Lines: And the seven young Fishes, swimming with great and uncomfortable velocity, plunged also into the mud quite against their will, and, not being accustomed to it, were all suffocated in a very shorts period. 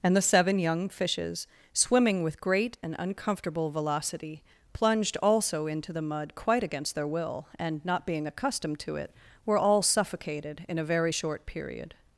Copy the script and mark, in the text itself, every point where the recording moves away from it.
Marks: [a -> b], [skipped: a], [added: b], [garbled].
And the seven young Fishes, swimming with great and uncomfortable velocity, plunged also into the mud quite against their will, and, not being accustomed to it, were all suffocated in a very [shorts -> short] period.